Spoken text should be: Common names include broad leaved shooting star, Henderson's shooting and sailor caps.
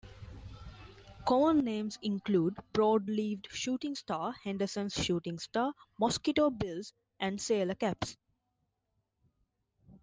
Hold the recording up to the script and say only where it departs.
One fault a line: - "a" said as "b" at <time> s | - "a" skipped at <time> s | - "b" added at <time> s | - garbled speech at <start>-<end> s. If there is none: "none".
- "star mosquito bills" added at 5.4 s